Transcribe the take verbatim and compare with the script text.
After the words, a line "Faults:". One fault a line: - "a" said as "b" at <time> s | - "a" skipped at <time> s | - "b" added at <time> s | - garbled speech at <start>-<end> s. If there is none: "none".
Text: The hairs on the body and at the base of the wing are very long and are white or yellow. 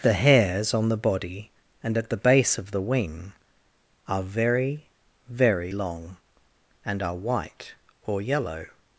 The hairs on the body and at the base of the wing are very very long and are white or yellow.
Faults:
- "very" added at 5.3 s